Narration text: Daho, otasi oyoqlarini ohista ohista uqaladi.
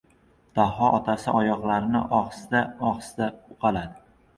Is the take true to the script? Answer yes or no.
yes